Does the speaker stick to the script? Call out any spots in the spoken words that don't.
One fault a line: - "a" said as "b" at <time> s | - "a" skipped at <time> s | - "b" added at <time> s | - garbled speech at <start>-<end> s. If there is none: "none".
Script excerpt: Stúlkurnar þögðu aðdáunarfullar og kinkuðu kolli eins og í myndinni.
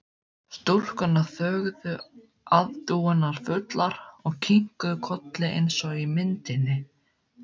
none